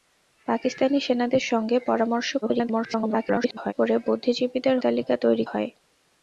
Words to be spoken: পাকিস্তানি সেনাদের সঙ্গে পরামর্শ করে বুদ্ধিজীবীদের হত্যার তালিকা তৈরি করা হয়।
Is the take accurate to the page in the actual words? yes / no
no